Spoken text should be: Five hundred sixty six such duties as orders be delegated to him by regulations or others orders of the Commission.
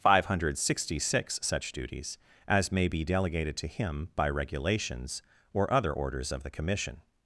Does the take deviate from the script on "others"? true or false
true